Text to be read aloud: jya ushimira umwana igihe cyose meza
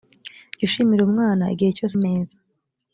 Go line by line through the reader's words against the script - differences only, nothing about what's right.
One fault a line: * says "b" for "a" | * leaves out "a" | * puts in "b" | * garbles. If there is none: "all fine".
all fine